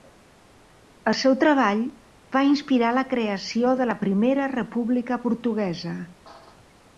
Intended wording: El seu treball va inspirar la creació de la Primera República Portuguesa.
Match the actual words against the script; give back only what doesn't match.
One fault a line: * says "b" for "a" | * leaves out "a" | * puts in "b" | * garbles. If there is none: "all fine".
all fine